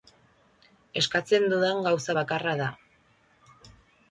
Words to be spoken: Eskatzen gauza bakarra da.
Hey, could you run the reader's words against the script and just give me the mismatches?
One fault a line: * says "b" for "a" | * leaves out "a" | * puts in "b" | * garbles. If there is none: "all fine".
* puts in "dudan"